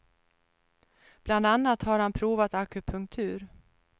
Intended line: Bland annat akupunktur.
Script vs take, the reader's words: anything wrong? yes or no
yes